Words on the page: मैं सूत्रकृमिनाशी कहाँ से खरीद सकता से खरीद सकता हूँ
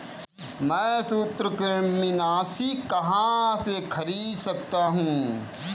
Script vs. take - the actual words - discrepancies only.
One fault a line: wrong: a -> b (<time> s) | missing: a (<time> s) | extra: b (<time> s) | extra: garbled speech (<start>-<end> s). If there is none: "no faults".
missing: से खरीद सकता (4.9 s)